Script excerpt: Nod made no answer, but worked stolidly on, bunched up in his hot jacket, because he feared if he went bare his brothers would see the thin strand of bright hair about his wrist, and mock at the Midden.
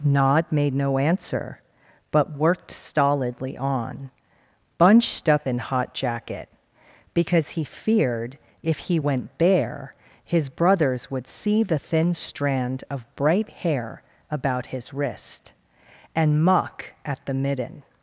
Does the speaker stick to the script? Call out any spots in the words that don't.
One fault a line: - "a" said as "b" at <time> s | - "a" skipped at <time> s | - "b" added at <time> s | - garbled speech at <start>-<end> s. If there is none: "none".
- "his" skipped at 5.6 s